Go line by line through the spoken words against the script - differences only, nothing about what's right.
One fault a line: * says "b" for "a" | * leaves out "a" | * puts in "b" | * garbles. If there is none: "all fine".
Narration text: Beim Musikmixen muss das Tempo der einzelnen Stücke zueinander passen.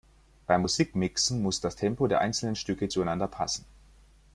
all fine